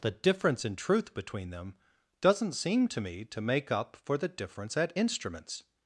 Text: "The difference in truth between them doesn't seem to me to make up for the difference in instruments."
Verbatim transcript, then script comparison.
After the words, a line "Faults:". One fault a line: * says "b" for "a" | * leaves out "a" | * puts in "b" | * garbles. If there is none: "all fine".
"The difference in truth between them doesn't seem to me to make up for the difference at instruments."
Faults:
* says "at" for "in"